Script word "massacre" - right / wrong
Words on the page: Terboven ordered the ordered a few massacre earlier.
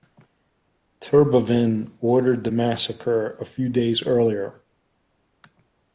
wrong